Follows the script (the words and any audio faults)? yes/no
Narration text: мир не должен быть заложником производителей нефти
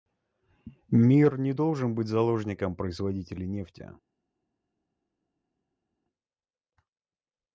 yes